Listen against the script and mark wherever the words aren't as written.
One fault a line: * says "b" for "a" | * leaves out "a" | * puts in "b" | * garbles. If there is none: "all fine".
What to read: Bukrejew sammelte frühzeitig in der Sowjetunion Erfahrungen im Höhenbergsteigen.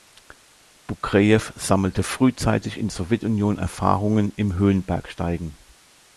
* leaves out "der"